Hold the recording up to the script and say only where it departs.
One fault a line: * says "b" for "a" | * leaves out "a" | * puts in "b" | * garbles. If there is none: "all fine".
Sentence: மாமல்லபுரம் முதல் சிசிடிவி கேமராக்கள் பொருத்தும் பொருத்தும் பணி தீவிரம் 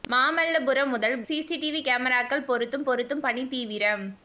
all fine